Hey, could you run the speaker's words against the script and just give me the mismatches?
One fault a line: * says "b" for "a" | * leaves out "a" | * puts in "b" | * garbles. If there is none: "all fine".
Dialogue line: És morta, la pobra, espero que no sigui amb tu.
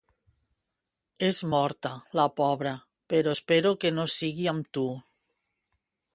* puts in "però"